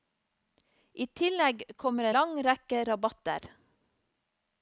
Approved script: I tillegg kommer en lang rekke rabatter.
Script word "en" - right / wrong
wrong